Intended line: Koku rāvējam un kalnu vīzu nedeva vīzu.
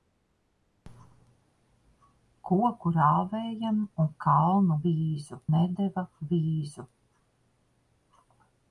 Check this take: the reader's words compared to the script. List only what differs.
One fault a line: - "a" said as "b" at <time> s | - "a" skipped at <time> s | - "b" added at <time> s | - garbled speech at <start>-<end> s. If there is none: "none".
none